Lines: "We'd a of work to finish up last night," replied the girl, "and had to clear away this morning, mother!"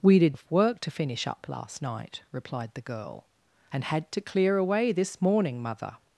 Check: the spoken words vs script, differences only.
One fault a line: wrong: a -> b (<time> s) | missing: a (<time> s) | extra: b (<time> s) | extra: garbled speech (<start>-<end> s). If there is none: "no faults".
no faults